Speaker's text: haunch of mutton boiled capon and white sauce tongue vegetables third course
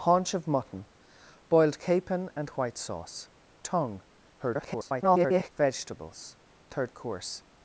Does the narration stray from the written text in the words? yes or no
yes